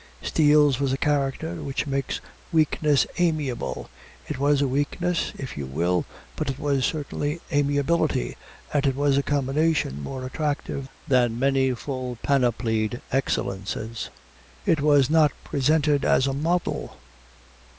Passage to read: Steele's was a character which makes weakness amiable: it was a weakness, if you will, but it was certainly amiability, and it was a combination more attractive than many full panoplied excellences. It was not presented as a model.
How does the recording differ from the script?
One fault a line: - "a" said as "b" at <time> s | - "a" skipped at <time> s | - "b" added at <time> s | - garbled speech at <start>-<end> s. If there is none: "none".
none